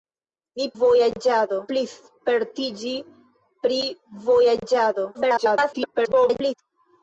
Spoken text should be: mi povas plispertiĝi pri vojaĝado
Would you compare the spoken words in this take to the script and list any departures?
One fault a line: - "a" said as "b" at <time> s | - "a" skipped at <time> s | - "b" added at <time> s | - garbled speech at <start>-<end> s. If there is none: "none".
- "povas" said as "vojaĝado" at 0.8 s
- garbled speech at 5.1-6.5 s